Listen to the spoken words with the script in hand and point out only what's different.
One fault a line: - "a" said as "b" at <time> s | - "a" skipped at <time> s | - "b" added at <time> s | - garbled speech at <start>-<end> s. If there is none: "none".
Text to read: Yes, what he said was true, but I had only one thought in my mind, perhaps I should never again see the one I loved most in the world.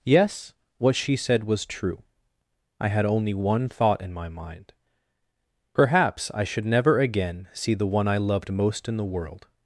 - "he" said as "she" at 0.9 s
- "but" skipped at 2.0 s